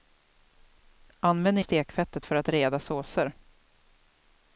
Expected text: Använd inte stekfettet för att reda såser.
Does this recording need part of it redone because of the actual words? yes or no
yes